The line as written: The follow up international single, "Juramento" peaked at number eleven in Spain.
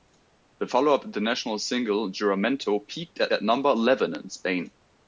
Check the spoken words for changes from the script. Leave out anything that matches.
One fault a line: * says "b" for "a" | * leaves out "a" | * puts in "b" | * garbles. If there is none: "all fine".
* puts in "at"